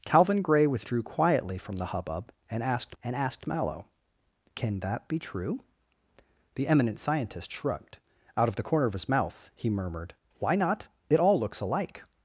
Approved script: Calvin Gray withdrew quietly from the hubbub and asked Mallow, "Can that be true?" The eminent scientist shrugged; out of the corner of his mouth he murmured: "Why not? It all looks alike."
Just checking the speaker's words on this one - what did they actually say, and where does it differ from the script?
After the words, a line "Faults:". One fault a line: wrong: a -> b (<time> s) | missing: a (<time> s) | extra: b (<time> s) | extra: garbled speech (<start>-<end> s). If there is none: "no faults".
Calvin Gray withdrew quietly from the hubbub and asked and asked Mallow, "Can that be true?" The eminent scientist shrugged; out of the corner of his mouth he murmured: "Why not? It all looks alike."
Faults:
extra: and asked (3.0 s)